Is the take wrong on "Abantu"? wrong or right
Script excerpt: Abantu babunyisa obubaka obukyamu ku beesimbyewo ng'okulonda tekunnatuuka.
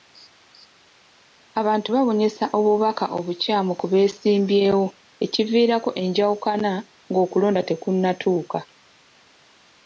right